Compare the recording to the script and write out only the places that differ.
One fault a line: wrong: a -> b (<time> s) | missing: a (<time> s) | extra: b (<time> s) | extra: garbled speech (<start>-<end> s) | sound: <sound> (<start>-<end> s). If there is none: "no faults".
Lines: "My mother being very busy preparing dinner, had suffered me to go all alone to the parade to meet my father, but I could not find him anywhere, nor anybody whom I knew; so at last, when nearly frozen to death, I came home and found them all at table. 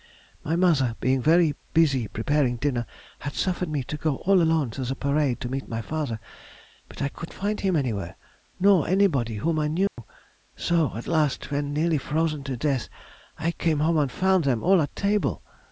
missing: not (7.3 s)
sound: dropout (9.9-10.0 s)